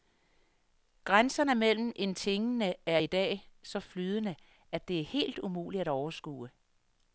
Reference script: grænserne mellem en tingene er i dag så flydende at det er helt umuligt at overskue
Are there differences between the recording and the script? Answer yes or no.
no